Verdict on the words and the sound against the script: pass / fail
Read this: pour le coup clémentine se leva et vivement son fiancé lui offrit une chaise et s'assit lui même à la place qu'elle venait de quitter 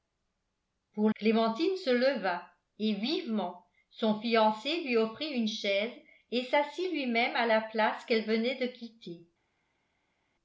fail